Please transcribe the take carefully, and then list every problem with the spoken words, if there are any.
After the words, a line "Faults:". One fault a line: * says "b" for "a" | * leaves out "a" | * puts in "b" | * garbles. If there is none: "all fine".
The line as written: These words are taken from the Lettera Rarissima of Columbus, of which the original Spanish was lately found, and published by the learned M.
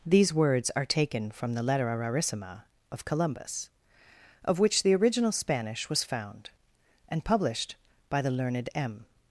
These words are taken from the Lettera Rarissima of Columbus, of which the original Spanish was found, and published by the learned M.
Faults:
* leaves out "lately"